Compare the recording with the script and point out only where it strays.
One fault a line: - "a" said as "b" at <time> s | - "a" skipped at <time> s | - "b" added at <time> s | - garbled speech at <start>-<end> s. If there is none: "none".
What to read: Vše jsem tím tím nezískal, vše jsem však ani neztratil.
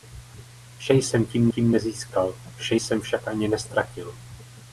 none